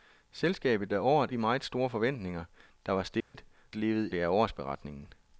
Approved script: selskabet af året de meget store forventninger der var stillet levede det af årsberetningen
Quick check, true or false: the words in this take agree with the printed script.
true